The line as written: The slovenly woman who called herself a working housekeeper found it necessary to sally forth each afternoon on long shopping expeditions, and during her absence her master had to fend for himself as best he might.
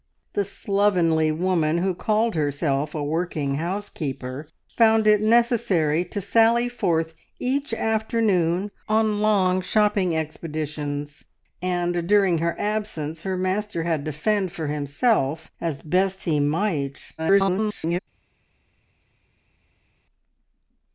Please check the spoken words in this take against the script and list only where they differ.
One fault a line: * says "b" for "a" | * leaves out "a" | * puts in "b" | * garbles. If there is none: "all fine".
* garbles